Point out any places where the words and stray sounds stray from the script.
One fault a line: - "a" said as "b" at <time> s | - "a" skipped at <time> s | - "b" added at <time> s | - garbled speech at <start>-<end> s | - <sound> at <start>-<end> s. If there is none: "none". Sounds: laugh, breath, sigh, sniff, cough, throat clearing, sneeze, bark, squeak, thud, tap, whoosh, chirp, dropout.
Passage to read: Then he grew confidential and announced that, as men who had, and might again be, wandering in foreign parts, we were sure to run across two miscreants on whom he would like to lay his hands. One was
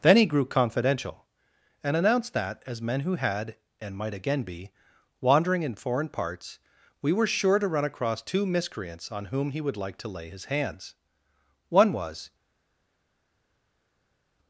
none